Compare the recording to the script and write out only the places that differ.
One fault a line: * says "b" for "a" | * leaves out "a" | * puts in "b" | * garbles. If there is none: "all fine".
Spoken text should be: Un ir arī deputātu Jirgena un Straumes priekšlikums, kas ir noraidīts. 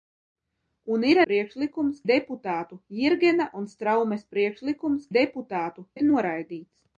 * says "priekšlikums" for "arī"
* says "deputātu" for "kas"